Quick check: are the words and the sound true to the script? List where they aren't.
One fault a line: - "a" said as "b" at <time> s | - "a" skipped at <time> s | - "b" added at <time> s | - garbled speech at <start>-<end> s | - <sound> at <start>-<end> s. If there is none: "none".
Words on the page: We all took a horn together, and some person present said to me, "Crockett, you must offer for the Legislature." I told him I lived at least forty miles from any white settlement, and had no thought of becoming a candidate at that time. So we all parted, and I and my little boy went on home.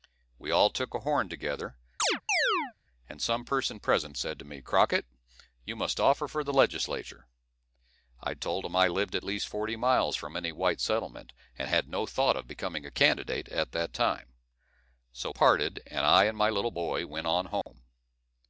- chirp at 2.0-2.7 s
- "we all" skipped at 15.3 s
- dropout at 17.6-17.7 s